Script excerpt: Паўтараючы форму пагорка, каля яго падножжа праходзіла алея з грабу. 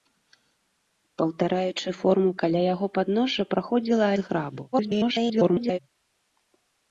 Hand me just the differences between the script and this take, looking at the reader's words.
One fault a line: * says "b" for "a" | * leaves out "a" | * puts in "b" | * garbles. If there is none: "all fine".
* leaves out "пагорка"
* leaves out "алея"
* garbles